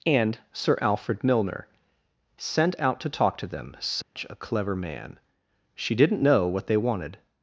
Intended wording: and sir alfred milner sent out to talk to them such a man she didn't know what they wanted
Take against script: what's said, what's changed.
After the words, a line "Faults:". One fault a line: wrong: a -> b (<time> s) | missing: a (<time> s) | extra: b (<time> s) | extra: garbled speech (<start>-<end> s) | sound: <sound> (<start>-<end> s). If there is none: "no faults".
and sir alfred milner sent out to talk to them such a clever man she didn't know what they wanted
Faults:
sound: dropout (4.0-4.2 s)
extra: clever (4.3 s)